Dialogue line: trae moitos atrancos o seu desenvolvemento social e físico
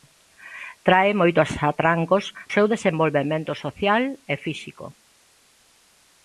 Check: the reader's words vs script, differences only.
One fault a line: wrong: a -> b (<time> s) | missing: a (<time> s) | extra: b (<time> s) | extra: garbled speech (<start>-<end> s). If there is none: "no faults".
no faults